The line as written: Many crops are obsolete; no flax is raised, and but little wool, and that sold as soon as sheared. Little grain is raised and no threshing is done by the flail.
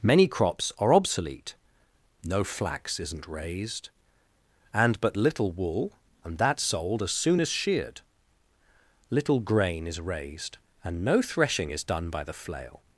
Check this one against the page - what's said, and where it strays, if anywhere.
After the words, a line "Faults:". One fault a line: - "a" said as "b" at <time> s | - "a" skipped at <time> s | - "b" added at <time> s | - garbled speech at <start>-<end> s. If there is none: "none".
Many crops are obsolete; no flax isn't raised, and but little wool, and that sold as soon as sheared. Little grain is raised and no threshing is done by the flail.
Faults:
- "is" said as "isn't" at 3.0 s